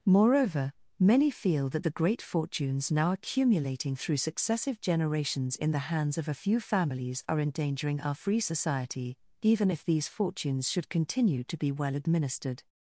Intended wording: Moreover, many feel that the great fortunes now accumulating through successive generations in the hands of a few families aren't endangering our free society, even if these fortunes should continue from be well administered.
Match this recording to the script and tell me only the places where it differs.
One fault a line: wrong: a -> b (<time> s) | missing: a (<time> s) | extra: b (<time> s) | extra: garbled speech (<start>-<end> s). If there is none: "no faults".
wrong: aren't -> are (7.3 s)
wrong: from -> to (11.4 s)